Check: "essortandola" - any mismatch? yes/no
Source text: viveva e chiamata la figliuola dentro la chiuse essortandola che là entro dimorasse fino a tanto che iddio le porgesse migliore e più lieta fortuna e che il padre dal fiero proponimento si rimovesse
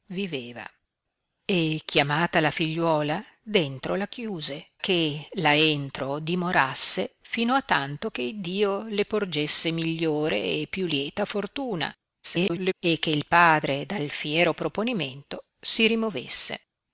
yes